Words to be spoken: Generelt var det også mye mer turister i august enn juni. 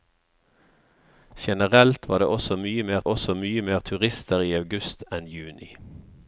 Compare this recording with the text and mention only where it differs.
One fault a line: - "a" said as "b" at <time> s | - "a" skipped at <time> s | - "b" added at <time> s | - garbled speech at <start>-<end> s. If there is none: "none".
- "også mye mer" added at 3.0 s